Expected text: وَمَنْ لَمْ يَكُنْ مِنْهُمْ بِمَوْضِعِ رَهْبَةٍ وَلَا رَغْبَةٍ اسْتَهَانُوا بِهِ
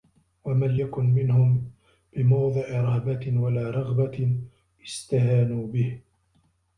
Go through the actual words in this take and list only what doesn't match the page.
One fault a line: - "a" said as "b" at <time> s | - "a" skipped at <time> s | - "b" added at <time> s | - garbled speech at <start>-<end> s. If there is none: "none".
- "لَمْ" skipped at 0.8 s